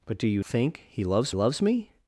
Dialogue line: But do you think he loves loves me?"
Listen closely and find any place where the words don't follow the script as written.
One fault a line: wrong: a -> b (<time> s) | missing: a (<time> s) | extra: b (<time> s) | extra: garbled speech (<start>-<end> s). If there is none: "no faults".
no faults